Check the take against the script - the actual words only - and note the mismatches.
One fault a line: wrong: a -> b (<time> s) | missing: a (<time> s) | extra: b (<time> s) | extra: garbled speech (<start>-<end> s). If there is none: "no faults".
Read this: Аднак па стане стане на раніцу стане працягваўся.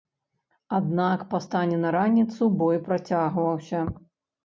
missing: стане (1.8 s)
wrong: стане -> бой (2.6 s)